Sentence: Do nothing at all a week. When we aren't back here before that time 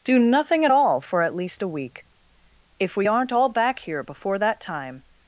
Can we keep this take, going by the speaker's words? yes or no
no